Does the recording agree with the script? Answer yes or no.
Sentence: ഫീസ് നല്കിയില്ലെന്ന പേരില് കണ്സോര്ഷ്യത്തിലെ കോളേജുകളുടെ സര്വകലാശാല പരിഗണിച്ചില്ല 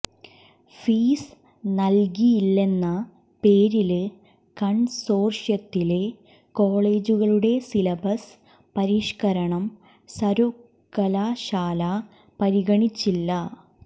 no